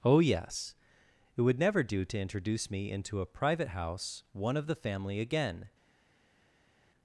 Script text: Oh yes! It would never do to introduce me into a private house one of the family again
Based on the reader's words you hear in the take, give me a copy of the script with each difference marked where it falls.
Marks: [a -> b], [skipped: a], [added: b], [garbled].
Oh yes! It would never do to introduce me into a private house one of the family again